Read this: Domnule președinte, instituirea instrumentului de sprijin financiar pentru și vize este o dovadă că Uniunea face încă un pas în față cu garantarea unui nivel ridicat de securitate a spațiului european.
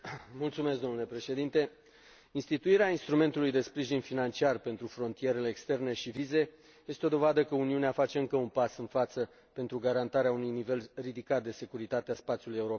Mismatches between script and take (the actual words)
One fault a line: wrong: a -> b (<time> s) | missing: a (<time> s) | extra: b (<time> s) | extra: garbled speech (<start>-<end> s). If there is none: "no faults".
extra: frontierele externe (4.9 s)
wrong: cu -> pentru (9.5 s)